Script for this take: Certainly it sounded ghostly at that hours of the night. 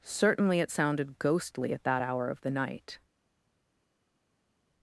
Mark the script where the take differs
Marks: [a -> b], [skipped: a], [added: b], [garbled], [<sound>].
Certainly it sounded ghostly at that [hours -> hour] of the night.